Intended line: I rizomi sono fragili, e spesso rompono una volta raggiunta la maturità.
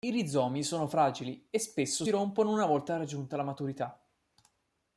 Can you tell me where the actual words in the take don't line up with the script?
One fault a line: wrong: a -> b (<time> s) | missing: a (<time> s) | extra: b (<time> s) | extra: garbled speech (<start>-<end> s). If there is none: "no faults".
no faults